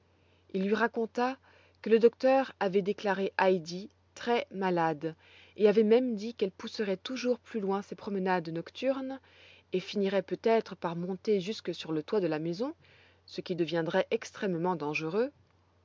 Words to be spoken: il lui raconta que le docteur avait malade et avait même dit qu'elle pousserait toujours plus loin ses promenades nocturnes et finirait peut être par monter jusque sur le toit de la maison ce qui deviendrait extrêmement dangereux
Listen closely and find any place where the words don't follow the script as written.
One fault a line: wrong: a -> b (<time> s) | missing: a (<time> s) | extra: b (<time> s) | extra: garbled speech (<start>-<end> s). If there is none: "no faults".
extra: déclaré heidi très (2.8 s)